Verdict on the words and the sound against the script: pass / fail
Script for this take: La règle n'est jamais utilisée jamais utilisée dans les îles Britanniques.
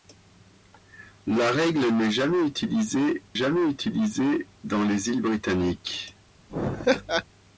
fail